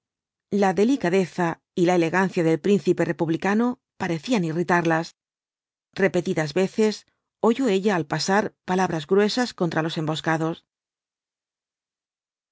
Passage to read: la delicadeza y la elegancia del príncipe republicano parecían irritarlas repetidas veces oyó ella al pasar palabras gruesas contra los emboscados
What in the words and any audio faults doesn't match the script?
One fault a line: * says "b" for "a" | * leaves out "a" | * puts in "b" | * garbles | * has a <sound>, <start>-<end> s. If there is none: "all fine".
all fine